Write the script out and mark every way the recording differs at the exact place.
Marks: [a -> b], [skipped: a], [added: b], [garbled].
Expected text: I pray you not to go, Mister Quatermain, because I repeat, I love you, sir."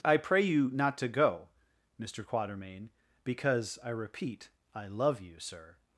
I pray you not to go, Mister Quatermain, because I repeat, I love you, sir."